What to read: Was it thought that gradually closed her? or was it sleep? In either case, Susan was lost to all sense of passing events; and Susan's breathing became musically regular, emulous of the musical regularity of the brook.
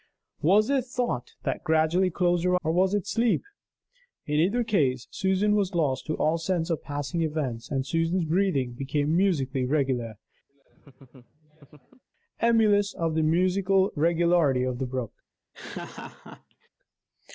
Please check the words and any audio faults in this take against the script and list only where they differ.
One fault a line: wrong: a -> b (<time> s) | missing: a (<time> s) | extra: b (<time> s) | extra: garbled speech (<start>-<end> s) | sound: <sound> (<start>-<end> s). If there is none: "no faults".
sound: laugh (10.5-12.0 s)
sound: laugh (15.5-16.7 s)